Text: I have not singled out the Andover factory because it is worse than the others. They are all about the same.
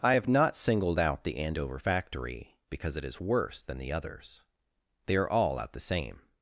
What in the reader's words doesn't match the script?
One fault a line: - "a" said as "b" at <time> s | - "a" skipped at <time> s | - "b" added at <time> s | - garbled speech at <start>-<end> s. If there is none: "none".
- "about" said as "out" at 5.6 s